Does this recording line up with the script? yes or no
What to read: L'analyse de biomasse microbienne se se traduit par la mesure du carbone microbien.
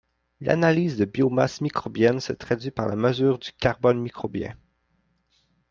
no